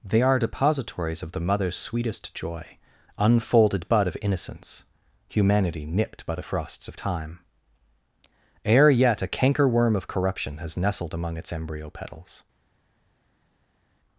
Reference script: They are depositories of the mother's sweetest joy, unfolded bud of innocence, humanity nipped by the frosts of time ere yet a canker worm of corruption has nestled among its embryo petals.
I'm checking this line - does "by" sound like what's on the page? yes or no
yes